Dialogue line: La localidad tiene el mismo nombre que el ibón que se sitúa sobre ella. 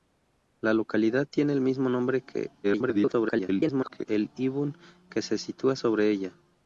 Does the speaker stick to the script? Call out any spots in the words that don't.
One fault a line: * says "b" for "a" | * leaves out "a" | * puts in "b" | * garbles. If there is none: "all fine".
* garbles